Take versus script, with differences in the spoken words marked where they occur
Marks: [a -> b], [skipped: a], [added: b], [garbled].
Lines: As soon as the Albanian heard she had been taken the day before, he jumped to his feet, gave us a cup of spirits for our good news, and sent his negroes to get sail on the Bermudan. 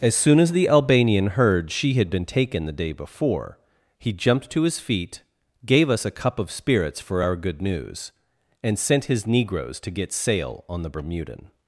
As soon as the Albanian heard she had been taken the day before, he jumped to his feet, gave us a cup of spirits for our good news, and sent his negroes to get sail on the Bermudan.